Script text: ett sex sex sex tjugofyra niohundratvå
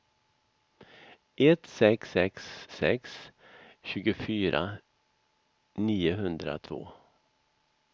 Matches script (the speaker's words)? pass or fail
pass